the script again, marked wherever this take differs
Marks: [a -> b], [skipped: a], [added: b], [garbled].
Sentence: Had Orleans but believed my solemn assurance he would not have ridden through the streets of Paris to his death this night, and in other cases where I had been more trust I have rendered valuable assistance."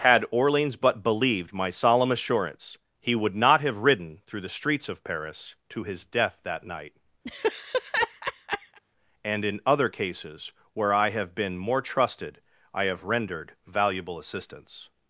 Had Orleans but believed my solemn assurance he would not have ridden through the streets of Paris to his death [this -> that] night, and in other cases where I [had -> have] been more [trust -> trusted] I have rendered valuable assistance."